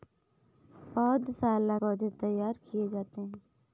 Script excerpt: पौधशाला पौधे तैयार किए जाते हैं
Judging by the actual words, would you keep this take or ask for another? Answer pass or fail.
pass